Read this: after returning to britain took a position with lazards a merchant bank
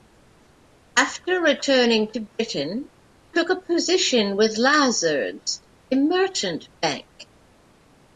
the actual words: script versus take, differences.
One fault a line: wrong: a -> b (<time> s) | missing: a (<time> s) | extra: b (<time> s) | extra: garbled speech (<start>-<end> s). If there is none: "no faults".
no faults